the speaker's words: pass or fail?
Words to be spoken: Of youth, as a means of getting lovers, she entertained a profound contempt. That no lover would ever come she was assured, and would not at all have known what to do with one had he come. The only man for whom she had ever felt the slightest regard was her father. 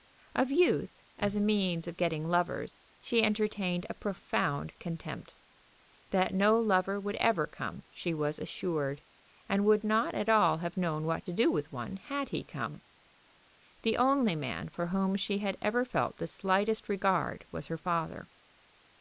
pass